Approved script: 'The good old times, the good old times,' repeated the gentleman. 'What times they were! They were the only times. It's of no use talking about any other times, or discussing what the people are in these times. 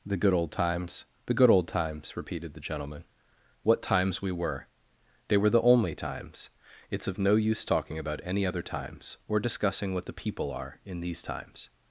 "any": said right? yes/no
yes